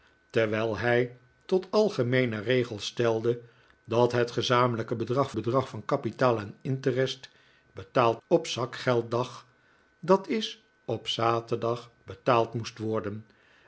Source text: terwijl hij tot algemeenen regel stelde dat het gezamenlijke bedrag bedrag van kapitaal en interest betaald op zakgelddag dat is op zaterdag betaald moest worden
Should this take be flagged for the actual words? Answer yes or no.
no